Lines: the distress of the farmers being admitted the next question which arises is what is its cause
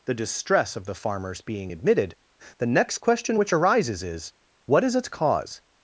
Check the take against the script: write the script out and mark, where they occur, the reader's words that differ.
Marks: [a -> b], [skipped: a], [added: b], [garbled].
the distress of the farmers being admitted the next question which arises is what is its cause